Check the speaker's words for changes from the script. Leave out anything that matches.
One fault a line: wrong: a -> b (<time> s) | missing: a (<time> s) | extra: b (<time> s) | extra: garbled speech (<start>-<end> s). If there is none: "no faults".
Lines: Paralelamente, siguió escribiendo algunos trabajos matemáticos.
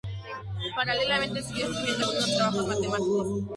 no faults